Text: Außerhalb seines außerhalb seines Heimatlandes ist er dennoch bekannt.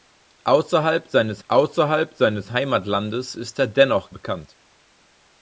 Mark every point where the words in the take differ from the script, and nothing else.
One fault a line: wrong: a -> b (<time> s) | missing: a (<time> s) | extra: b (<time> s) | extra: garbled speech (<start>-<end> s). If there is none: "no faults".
no faults